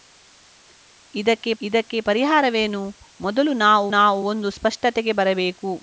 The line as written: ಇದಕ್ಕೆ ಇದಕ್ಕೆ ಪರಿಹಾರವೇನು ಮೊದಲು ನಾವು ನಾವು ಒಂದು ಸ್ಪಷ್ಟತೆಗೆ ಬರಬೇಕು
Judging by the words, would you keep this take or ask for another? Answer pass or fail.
pass